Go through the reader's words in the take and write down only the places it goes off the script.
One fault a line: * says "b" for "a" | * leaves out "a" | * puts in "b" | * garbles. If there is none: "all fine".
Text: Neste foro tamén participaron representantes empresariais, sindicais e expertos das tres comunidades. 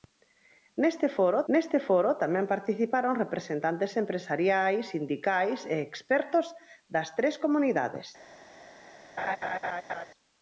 * puts in "neste foro"